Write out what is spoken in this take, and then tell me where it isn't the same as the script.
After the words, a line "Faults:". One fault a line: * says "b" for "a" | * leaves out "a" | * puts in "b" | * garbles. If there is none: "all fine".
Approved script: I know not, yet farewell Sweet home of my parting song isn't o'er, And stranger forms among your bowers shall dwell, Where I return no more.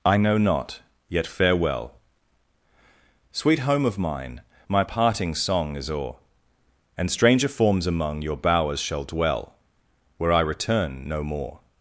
I know not, yet farewell Sweet home of mine, my parting song is o'er, And stranger forms among your bowers shall dwell, Where I return no more.
Faults:
* puts in "mine"
* says "is" for "isn't"